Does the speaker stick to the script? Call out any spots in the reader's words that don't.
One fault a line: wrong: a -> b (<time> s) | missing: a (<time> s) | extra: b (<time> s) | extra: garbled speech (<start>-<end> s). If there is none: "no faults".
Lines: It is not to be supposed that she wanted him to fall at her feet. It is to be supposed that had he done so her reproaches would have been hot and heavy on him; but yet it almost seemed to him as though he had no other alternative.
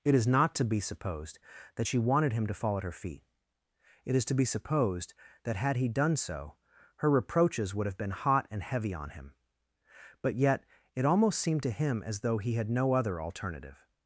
no faults